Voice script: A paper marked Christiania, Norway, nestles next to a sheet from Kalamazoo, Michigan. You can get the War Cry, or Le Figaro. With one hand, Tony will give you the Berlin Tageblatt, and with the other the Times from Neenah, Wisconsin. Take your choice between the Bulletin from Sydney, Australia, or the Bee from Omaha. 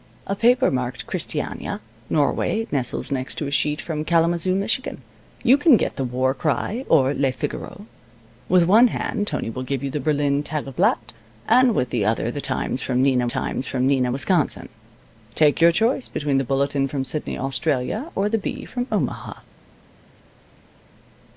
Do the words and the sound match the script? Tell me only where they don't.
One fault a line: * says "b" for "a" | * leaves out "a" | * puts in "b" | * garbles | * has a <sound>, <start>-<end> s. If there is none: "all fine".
* puts in "Times from Neenah"